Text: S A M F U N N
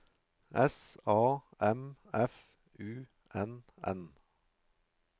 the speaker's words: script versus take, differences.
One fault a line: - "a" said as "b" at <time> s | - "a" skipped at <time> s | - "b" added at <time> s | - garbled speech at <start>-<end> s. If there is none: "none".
none